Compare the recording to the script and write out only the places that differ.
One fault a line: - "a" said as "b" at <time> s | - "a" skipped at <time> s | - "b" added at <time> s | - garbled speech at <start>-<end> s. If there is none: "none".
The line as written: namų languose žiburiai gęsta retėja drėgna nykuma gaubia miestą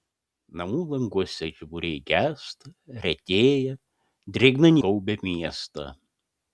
- "nykuma" skipped at 4.8 s